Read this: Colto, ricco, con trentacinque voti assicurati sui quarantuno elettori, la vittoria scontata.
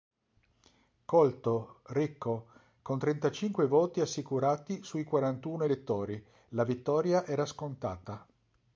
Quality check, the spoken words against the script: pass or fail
fail